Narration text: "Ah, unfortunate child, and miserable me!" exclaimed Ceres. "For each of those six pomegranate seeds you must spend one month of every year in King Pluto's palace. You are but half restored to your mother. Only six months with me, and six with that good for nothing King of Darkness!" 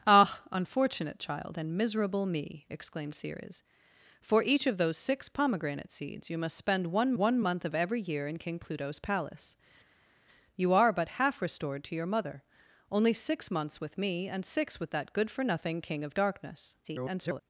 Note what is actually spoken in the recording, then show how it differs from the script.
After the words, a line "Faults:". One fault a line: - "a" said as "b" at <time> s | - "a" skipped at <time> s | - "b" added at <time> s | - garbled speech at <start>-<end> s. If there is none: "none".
"Ah, unfortunate child, and miserable me!" exclaimed Ceres. "For each of those six pomegranate seeds you must spend one one month of every year in King Pluto's palace. You are but half restored to your mother. Only six months with me, and six with that good for nothing King of Darkness!" [garbled]
Faults:
- "one" added at 7.1 s
- garbled speech at 16.8-17.4 s